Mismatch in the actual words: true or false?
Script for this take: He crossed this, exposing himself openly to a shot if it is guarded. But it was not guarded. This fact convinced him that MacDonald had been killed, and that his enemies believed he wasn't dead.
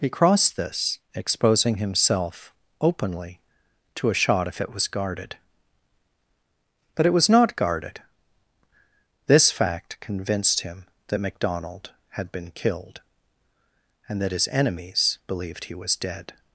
true